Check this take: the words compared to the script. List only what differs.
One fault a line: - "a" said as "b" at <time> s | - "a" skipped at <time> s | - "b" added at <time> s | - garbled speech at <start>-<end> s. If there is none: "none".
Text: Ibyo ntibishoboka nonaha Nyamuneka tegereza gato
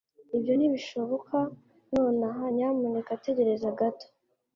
none